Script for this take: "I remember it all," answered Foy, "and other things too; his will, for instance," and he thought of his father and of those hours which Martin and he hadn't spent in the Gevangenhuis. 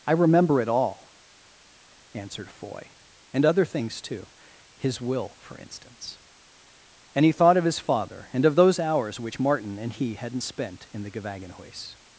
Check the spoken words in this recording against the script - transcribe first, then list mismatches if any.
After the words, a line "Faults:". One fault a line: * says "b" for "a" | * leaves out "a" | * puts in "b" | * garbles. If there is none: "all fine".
"I remember it all," answered Foy, "and other things too; his will, for instance," and he thought of his father and of those hours which Martin and he hadn't spent in the Gevangenhuis.
Faults:
all fine